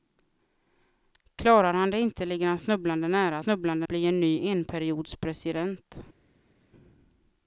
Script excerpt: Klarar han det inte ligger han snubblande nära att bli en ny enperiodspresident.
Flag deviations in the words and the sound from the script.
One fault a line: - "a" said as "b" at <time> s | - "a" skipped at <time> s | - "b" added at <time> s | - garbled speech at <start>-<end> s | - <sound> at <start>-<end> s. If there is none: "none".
- "att" said as "snubblande" at 3.4 s